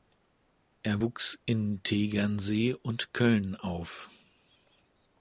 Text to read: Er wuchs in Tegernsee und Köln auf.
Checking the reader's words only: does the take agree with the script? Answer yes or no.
yes